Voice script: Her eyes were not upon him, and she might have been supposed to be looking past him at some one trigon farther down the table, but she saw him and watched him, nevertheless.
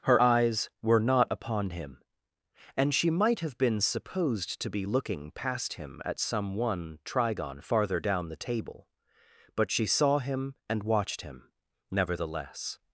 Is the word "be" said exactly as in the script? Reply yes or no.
yes